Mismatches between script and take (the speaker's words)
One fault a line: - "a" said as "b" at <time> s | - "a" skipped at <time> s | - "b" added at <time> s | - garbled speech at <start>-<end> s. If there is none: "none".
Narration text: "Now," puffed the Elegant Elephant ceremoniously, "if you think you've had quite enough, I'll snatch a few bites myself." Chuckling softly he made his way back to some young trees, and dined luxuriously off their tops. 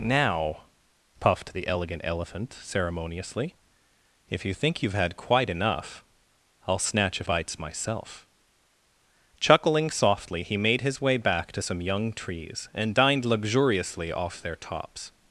- "few" skipped at 7.3 s